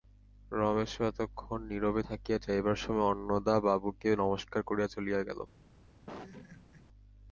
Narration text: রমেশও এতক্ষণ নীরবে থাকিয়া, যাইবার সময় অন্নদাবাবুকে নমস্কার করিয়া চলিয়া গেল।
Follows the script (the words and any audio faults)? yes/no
no